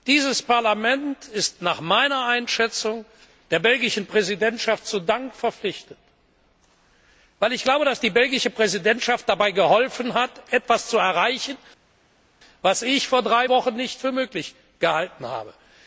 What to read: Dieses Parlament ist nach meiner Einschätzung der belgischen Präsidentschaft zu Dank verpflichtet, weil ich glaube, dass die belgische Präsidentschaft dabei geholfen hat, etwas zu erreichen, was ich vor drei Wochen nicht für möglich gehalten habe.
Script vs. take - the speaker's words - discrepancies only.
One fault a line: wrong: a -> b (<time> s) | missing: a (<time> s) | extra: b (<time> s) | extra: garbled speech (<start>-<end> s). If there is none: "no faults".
no faults